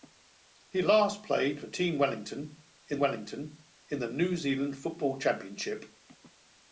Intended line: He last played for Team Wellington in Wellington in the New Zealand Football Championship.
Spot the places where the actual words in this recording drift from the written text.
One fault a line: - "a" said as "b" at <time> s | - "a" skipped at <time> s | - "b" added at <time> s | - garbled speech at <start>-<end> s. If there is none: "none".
none